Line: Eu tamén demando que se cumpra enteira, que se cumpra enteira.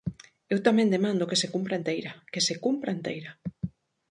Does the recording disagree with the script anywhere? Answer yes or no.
no